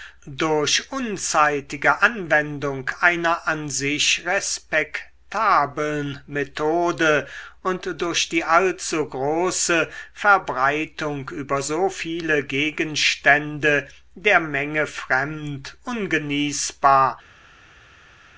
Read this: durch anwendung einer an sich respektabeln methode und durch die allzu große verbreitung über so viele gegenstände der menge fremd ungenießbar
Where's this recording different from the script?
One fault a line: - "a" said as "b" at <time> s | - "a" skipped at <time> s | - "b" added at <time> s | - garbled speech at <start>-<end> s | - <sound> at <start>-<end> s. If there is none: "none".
- "unzeitige" added at 0.9 s